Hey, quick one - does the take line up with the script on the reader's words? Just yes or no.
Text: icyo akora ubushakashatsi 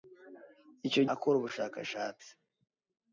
yes